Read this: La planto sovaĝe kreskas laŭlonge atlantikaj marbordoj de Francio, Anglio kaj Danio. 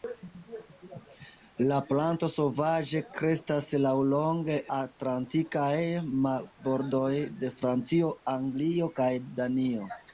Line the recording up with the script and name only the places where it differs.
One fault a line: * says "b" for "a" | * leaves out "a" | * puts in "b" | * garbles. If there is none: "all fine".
all fine